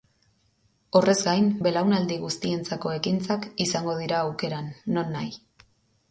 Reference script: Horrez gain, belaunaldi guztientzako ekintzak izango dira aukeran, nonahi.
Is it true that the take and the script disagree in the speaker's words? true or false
false